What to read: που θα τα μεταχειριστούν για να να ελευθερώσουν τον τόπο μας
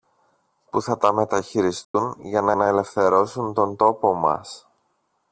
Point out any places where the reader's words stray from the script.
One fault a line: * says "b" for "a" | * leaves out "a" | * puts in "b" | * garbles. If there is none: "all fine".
all fine